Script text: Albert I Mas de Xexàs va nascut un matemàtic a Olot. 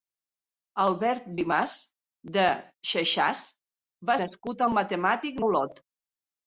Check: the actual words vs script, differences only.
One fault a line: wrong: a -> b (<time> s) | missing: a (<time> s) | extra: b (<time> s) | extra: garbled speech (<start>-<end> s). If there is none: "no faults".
no faults